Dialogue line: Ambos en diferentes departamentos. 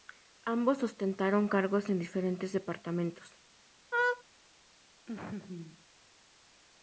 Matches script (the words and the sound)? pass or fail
fail